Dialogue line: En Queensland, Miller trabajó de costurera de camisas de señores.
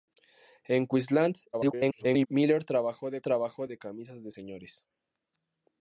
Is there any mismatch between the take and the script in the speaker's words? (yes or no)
yes